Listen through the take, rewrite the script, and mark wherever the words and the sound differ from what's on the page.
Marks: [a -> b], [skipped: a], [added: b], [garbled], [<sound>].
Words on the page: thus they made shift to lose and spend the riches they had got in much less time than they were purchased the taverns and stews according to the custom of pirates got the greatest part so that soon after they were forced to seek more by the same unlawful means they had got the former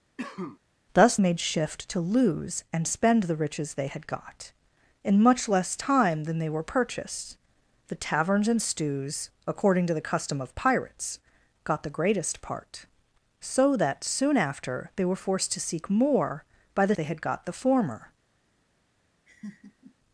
[cough] thus [skipped: they] made shift to lose and spend the riches they had got in much less time than they were purchased the taverns and stews according to the custom of pirates got the greatest part so that soon after they were forced to seek more by the [skipped: same unlawful means] they had got the former [laugh]